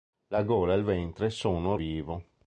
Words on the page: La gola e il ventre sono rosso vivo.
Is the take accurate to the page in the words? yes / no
no